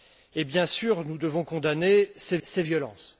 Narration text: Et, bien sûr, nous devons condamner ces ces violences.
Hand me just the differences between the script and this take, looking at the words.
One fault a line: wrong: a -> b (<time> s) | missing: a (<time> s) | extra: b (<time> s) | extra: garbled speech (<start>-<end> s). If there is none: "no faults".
no faults